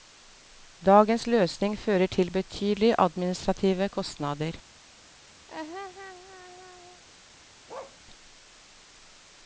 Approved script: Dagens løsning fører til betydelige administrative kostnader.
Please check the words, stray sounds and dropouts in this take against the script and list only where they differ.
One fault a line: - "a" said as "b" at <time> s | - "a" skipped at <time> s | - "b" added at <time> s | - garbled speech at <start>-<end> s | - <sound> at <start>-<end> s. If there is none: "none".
- laugh at 5.5-7.0 s
- bark at 7.7-8.0 s